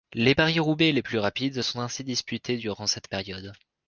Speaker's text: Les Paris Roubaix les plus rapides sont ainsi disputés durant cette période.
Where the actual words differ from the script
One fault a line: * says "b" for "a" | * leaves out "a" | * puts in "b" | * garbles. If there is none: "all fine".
all fine